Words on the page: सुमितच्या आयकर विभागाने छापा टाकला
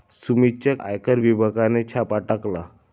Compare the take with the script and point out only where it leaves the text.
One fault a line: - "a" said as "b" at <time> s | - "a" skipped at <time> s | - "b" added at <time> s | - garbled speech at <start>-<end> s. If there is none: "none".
none